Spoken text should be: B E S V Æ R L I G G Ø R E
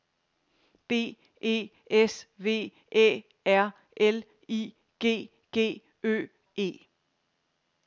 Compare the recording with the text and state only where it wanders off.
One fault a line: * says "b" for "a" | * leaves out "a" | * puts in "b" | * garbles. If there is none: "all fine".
* leaves out "R"